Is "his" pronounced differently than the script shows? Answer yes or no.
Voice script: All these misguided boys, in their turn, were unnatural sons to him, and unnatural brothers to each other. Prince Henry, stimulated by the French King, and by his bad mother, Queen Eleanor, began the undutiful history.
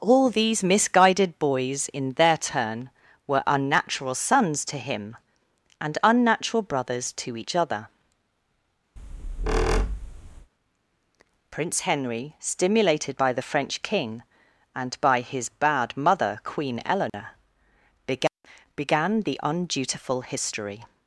no